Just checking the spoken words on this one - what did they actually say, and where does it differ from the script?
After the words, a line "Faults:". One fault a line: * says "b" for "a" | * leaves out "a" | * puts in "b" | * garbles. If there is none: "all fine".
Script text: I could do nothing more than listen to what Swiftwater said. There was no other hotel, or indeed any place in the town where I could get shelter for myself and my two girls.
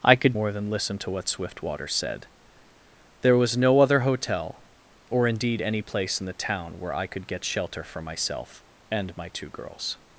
I could more than listen to what Swiftwater said. There was no other hotel, or indeed any place in the town where I could get shelter for myself and my two girls.
Faults:
* leaves out "do nothing"